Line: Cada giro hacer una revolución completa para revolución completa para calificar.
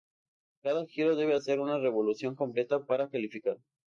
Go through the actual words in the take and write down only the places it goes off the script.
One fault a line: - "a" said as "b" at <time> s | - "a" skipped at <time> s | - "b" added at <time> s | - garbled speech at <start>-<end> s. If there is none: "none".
- "debe" added at 1.1 s
- "revolución completa para" skipped at 3.1 s